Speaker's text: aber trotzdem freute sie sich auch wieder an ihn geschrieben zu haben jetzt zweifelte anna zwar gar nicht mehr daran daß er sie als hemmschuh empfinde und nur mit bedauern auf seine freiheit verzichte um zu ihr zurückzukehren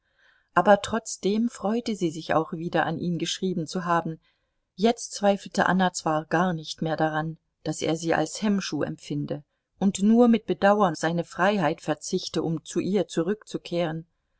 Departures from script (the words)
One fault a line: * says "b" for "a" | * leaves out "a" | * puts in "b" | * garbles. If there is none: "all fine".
* leaves out "auf"